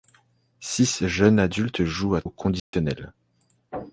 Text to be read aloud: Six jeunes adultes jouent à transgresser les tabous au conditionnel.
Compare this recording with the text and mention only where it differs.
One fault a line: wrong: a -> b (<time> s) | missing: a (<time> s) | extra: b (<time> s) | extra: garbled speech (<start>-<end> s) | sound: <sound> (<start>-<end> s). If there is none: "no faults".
missing: transgresser les tabous (2.2 s)
sound: dropout (2.6-2.7 s)